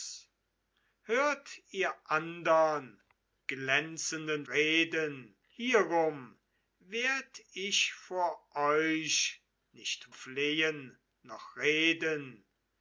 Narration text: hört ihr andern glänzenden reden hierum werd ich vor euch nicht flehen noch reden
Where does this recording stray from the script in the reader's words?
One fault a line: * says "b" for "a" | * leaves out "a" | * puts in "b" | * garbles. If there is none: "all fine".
all fine